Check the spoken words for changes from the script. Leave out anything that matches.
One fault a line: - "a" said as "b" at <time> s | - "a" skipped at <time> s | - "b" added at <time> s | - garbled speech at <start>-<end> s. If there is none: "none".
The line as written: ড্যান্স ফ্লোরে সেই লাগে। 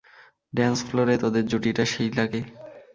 - "তোদের জুটিটা" added at 1.1 s